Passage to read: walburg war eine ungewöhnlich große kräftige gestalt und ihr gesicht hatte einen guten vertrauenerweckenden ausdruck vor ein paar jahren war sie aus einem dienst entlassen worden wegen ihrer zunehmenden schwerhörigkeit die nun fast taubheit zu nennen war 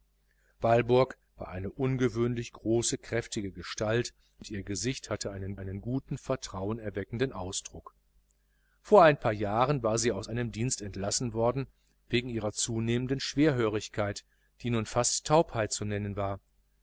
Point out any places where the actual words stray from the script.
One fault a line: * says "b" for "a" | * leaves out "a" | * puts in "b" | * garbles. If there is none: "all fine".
* puts in "einen"